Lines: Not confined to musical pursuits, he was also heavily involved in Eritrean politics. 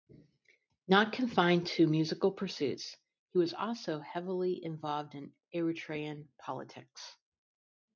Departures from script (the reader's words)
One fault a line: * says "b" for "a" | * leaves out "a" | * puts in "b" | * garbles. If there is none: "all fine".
all fine